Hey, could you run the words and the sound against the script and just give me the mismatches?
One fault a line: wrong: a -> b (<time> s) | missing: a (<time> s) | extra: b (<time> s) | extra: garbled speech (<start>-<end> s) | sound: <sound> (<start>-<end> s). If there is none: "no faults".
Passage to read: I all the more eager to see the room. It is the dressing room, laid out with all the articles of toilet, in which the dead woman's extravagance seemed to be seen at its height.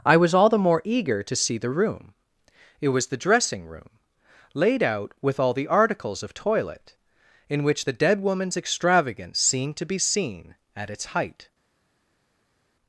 extra: was (0.2 s)
wrong: is -> was (2.9 s)